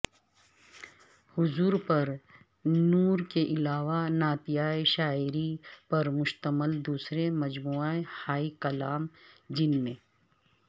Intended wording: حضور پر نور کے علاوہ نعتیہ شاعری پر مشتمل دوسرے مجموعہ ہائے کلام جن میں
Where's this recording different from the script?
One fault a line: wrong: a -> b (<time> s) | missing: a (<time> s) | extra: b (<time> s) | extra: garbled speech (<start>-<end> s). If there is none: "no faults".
no faults